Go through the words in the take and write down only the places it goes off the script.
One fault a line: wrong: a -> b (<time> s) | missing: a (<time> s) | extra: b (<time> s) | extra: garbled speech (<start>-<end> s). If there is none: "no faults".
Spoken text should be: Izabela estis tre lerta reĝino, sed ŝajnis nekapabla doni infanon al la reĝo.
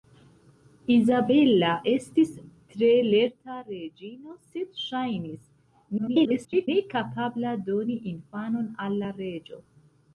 extra: garbled speech (6.0-6.7 s)